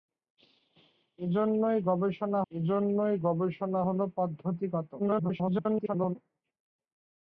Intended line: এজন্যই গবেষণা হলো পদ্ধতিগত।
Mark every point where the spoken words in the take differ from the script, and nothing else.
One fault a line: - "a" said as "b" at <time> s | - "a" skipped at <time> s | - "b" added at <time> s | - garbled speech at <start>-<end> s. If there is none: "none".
- "এজন্যই গবেষণা" added at 2.5 s
- garbled speech at 5.0-6.2 s